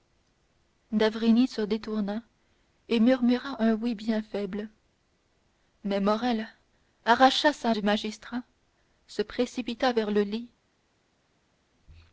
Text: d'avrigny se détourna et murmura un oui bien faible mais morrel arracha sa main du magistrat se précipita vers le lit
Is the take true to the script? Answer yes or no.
no